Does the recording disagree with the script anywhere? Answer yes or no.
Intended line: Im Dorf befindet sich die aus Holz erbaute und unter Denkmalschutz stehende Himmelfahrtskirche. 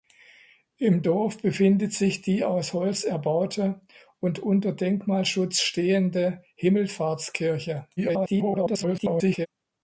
yes